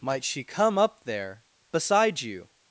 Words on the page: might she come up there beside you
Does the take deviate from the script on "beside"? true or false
false